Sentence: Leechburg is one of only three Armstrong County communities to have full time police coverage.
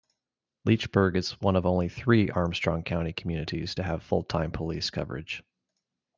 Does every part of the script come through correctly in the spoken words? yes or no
yes